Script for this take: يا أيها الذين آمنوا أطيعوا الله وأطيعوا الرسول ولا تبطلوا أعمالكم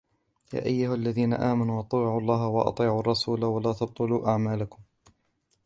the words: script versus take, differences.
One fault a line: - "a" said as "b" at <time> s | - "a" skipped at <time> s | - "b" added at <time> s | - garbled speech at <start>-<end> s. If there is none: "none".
none